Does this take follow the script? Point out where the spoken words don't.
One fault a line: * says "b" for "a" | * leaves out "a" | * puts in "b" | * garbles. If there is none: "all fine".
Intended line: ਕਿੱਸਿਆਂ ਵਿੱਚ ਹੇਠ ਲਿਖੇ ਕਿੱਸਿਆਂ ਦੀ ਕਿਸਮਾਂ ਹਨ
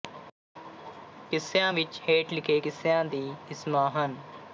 all fine